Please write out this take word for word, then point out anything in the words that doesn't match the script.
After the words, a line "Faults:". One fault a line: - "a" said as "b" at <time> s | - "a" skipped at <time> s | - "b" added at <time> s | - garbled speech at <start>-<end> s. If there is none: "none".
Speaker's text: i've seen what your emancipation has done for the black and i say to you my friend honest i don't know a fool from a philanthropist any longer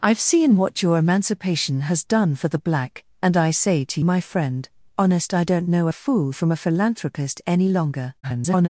i've seen what your emancipation has done for the black and i say to my friend honest i don't know a fool from a philanthropist any longer [garbled]
Faults:
- "you" skipped at 4.0 s
- garbled speech at 8.2-8.7 s